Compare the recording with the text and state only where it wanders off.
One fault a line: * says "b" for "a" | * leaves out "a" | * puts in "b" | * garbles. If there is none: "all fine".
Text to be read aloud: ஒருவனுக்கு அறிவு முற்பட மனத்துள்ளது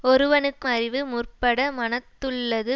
all fine